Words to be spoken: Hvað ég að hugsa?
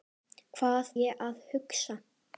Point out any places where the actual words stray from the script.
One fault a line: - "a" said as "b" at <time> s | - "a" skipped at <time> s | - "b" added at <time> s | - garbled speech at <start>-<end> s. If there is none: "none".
none